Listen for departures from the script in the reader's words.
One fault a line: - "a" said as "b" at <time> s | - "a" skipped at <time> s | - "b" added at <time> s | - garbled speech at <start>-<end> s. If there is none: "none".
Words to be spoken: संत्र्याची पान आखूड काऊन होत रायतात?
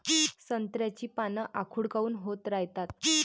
none